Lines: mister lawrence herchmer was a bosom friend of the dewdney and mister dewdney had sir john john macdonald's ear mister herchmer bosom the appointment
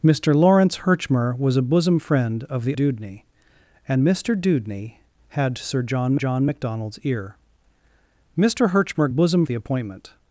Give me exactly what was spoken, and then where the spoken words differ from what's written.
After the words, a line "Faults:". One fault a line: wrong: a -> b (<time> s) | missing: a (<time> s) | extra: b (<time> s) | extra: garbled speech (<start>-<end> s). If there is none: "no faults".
mister lawrence herchmer was a bosom friend of the dewdney and mister dewdney had sir john john macdonald's ear mister herchmer bosom the appointment
Faults:
no faults